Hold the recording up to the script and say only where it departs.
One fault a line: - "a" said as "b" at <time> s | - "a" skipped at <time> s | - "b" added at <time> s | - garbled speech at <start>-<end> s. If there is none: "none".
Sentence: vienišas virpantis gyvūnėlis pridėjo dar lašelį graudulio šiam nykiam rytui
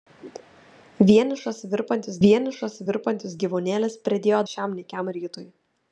- "vienišas virpantis" added at 2.2 s
- "dar lašelį graudulio" skipped at 4.4 s